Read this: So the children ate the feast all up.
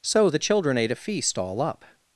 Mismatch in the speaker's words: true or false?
true